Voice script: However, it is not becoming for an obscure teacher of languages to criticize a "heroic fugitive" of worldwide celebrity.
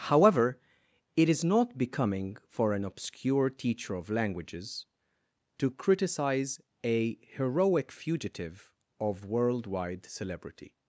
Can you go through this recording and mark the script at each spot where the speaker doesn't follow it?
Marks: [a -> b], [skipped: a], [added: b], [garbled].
However, it is not becoming for an obscure teacher of languages to criticize a "heroic fugitive" of worldwide celebrity.